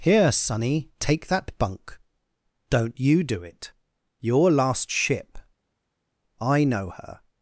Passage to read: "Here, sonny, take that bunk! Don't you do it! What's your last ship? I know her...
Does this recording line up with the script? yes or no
no